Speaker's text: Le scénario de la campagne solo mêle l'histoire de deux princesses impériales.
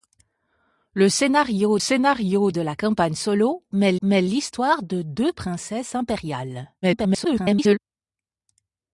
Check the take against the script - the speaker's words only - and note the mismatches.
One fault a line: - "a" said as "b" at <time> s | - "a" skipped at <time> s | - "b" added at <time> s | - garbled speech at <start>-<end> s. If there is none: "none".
- "scénario" added at 1.8 s
- "mêle" added at 4.0 s
- garbled speech at 6.8-7.8 s